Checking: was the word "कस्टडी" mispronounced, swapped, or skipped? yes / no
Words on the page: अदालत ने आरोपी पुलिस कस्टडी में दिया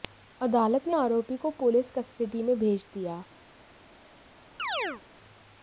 no